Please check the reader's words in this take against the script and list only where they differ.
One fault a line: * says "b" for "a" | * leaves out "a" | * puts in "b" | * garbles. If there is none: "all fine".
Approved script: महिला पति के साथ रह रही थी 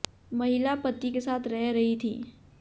all fine